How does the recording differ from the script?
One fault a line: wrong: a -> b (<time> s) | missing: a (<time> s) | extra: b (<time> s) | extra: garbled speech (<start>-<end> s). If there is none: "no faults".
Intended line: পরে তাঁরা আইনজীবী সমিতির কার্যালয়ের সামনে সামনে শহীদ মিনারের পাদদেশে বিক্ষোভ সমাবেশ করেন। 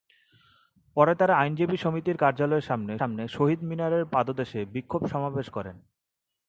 no faults